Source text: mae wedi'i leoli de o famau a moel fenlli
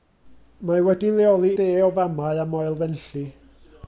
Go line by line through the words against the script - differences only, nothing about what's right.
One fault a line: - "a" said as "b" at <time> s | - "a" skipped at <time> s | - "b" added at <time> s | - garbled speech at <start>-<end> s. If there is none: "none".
none